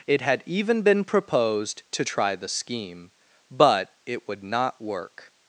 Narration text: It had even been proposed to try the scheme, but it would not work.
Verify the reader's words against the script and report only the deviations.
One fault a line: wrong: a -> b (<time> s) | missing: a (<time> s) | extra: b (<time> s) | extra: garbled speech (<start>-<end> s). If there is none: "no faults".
no faults